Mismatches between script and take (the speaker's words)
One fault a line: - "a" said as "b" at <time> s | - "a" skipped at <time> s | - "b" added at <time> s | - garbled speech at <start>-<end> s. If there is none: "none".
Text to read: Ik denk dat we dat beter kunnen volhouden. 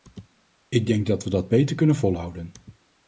none